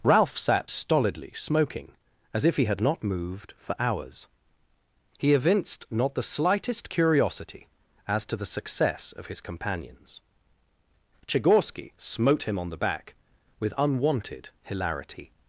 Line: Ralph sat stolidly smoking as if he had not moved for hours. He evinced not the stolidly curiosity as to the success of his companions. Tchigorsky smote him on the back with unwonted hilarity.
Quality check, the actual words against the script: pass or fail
fail